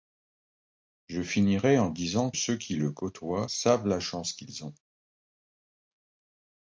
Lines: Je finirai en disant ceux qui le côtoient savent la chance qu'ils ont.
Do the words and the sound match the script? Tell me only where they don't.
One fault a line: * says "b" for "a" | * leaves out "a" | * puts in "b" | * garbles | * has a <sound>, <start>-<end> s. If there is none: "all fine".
all fine